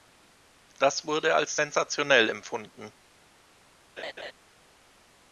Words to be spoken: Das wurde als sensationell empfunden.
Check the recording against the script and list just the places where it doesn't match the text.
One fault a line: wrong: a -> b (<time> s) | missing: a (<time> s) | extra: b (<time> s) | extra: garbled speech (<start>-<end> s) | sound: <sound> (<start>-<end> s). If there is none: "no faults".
sound: laugh (4.0-4.3 s)